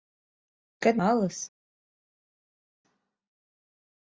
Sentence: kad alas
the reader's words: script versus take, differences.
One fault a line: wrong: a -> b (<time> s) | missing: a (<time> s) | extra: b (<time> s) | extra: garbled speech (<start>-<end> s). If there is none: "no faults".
no faults